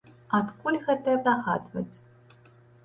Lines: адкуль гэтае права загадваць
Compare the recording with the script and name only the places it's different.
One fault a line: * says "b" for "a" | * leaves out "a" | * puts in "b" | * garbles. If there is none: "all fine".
* leaves out "права"